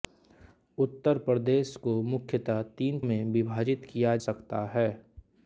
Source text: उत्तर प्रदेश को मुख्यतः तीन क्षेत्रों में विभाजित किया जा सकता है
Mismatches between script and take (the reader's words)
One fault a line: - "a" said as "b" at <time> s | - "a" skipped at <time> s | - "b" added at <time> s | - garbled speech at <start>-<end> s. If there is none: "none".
- "क्षेत्रों" skipped at 3.0 s
- "जा" skipped at 4.2 s